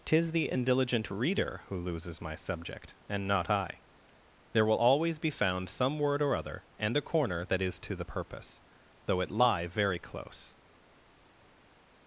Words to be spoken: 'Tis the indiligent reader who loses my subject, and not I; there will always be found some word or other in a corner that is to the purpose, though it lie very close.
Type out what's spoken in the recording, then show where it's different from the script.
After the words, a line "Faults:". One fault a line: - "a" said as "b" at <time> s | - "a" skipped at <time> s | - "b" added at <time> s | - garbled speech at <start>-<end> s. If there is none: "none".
'Tis the indiligent reader who loses my subject, and not I; there will always be found some word or other and a corner that is to the purpose, though it lie very close.
Faults:
- "in" said as "and" at 6.8 s